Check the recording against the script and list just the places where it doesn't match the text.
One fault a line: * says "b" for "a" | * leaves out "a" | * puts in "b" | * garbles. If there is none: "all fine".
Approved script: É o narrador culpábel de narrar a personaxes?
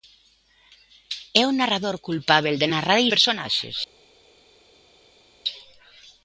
all fine